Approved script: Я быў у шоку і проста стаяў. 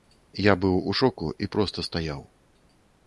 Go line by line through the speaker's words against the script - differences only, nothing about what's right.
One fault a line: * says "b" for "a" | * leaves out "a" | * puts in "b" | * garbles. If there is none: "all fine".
all fine